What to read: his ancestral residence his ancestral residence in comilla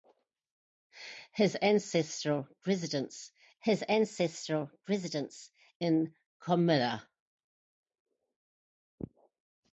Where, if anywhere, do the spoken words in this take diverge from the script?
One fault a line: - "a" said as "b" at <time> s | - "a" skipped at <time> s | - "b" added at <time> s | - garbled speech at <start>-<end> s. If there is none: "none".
none